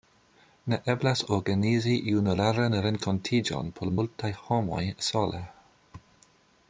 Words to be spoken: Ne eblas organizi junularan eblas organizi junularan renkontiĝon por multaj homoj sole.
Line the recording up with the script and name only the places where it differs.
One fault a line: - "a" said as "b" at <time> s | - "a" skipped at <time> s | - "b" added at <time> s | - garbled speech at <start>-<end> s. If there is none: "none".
- "eblas organizi junularan" skipped at 2.8 s